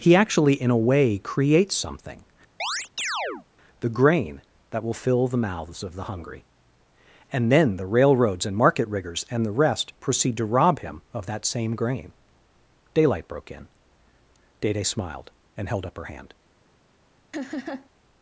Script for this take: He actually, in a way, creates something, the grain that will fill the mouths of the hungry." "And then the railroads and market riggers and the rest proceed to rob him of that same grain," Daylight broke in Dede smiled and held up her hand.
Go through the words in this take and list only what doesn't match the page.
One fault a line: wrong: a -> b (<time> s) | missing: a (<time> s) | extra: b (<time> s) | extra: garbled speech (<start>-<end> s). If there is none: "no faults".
no faults